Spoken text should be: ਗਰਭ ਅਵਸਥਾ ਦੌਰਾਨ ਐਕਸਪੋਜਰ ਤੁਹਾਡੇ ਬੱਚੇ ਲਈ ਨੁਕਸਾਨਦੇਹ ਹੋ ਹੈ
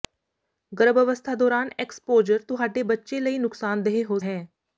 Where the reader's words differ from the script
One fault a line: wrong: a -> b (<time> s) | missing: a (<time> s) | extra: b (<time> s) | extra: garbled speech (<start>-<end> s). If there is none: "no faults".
no faults